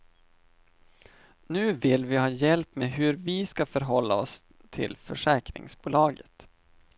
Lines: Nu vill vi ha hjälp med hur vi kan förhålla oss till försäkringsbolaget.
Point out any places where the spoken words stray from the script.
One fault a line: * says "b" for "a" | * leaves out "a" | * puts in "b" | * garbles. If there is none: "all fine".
* says "ska" for "kan"